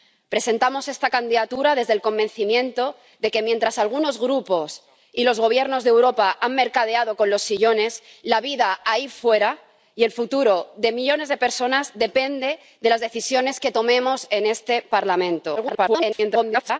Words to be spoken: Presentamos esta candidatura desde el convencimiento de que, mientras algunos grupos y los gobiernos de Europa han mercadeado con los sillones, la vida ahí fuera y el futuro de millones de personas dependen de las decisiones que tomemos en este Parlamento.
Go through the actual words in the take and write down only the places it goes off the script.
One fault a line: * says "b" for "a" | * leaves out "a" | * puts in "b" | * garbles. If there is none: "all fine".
* garbles